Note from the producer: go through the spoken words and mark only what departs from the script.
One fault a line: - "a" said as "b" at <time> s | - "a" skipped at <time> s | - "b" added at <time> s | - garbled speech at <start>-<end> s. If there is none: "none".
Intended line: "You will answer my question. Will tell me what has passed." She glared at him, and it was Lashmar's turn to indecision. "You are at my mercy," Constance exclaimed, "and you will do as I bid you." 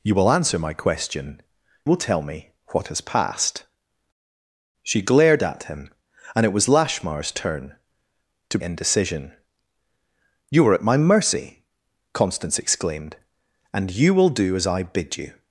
none